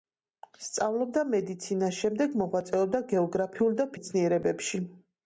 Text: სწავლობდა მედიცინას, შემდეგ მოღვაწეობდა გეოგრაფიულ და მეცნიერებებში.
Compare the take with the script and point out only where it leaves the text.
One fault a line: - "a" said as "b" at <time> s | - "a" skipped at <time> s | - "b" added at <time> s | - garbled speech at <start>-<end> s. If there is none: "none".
none